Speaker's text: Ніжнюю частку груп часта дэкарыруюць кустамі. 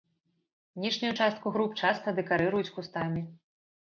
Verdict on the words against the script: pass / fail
pass